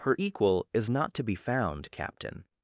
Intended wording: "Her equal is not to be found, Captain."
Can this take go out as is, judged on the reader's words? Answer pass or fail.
pass